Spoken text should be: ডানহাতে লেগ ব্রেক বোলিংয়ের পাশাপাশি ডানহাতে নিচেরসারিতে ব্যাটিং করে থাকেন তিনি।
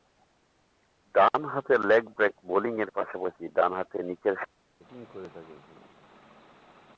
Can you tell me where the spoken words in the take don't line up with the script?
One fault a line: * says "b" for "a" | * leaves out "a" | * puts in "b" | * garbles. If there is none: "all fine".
all fine